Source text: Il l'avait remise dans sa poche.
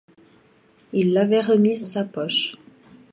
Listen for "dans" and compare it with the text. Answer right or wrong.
wrong